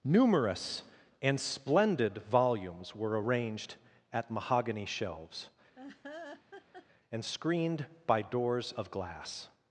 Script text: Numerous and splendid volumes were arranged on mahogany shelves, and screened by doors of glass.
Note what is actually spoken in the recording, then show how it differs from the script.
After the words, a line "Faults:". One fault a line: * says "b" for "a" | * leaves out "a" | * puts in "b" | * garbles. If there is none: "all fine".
Numerous and splendid volumes were arranged at mahogany shelves, and screened by doors of glass.
Faults:
* says "at" for "on"